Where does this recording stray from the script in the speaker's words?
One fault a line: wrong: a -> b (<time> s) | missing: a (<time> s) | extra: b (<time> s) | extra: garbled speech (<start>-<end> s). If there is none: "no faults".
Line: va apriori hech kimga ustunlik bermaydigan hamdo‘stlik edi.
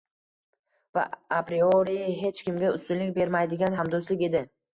no faults